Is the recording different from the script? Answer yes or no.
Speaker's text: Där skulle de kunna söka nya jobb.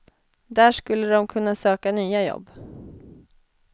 no